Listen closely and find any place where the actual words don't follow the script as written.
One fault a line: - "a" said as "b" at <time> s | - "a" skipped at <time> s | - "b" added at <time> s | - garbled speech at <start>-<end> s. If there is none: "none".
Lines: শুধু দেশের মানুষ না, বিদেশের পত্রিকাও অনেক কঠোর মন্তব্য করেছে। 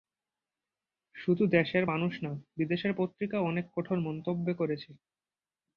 none